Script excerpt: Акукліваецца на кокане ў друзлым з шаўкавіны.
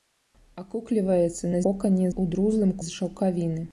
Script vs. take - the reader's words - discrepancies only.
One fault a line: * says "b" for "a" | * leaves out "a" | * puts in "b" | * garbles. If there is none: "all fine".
all fine